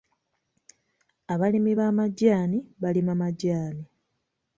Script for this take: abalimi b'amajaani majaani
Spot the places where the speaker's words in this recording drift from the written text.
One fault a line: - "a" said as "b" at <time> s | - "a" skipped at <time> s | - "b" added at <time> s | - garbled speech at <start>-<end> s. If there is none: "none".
- "balima" added at 2.8 s